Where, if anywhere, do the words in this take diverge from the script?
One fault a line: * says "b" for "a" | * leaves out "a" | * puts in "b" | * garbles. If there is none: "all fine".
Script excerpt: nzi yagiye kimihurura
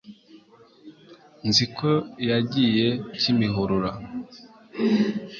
* puts in "ko"